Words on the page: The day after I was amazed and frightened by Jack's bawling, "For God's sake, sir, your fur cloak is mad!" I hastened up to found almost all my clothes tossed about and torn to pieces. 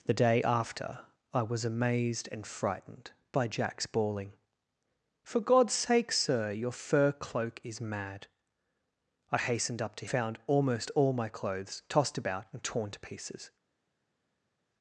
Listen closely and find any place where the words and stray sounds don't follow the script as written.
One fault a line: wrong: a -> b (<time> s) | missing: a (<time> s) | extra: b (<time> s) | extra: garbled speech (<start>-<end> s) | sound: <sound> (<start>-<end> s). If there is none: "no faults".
no faults